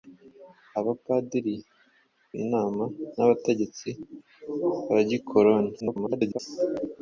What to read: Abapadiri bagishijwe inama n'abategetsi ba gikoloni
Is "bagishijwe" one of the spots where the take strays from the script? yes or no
yes